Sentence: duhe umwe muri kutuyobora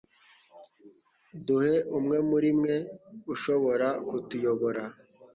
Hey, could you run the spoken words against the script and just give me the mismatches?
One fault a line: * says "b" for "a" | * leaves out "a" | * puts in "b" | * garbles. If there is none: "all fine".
* puts in "mwe ushobora"